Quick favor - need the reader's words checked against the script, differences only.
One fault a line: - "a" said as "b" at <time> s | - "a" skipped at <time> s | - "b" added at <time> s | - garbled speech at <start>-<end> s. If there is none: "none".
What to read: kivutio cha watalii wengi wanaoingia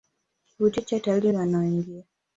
- "wengi" skipped at 1.3 s